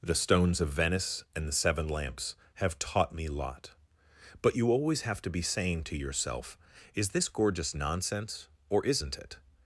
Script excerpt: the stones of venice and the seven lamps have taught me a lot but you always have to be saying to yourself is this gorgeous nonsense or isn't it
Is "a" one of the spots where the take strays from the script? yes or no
yes